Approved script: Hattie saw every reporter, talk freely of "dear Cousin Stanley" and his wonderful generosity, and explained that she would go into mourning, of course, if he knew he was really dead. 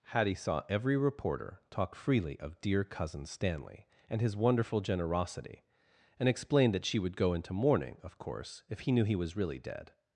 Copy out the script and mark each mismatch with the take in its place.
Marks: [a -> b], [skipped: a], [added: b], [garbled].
Hattie saw every reporter, talk freely of "dear Cousin Stanley" and his wonderful generosity, and explained that she would go into mourning, of course, if he knew he was really dead.